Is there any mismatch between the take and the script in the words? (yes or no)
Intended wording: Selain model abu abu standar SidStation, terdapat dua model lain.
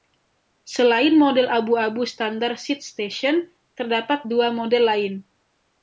no